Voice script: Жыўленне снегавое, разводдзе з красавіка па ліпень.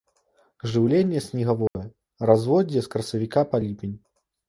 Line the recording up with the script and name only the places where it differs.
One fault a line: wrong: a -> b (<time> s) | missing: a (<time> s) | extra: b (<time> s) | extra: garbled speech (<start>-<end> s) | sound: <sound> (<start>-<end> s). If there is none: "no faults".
sound: dropout (1.7-1.8 s)